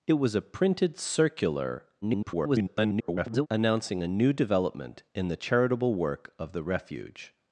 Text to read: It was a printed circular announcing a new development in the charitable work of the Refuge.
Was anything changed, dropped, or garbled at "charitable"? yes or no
no